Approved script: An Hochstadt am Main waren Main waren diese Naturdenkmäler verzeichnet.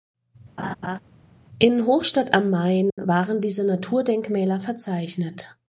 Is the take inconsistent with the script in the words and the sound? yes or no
yes